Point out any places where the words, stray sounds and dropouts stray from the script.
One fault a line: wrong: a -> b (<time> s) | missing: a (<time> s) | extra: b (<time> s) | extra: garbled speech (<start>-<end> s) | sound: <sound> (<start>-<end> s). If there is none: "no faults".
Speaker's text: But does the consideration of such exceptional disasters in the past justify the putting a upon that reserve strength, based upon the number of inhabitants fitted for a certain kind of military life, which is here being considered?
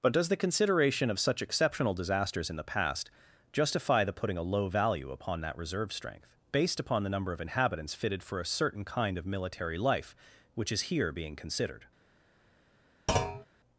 extra: low value (4.4 s)
sound: thud (13.1-13.5 s)